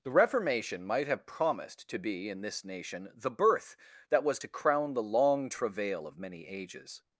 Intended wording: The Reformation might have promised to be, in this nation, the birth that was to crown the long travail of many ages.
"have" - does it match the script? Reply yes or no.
yes